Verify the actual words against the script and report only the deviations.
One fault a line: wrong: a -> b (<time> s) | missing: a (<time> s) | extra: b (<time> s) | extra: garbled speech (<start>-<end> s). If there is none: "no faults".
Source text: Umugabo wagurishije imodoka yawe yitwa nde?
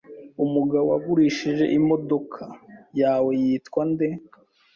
no faults